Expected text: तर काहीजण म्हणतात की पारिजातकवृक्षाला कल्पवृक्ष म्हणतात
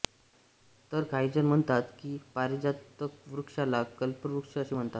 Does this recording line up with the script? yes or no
no